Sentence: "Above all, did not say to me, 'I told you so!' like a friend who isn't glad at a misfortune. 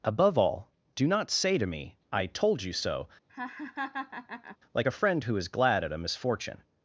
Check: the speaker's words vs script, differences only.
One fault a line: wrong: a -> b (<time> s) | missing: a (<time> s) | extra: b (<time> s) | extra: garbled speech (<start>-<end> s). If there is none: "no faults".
wrong: did -> do (0.9 s)
wrong: isn't -> is (5.4 s)